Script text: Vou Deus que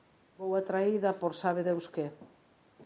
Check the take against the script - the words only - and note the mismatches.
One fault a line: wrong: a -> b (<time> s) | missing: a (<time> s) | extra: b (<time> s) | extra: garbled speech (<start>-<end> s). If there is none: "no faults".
extra: atraída por sabe (0.6 s)